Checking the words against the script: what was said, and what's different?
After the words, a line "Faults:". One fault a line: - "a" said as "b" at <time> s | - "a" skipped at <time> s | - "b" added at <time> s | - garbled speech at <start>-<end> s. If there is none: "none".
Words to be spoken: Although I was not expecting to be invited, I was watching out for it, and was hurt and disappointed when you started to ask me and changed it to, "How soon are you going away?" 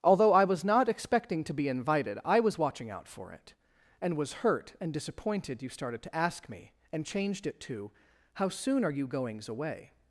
Although I was not expecting to be invited, I was watching out for it, and was hurt and disappointed you started to ask me and changed it to, "How soon are you goings away?"
Faults:
- "when" skipped at 5.6 s
- "going" said as "goings" at 9.1 s